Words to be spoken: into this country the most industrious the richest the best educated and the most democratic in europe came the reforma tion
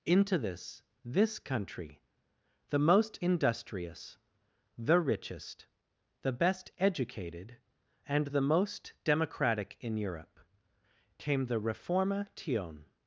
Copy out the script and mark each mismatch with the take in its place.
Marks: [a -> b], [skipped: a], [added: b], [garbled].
into this [added: this] country the most industrious the richest the best educated and the most democratic in europe came the reforma tion